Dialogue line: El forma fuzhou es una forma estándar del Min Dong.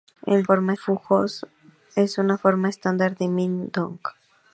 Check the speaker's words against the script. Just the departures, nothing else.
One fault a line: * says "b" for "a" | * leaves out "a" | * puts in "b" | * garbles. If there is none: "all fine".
all fine